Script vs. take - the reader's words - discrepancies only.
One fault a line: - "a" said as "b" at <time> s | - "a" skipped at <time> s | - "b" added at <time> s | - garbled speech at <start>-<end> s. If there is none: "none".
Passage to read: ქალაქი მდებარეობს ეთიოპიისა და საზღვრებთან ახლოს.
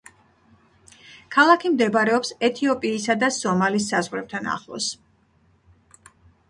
- "სომალის" added at 3.4 s